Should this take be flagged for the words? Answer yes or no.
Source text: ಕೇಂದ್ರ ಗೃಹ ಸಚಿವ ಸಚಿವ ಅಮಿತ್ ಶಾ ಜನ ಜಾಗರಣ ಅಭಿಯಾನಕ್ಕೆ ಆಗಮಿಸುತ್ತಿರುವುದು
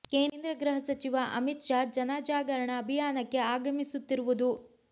yes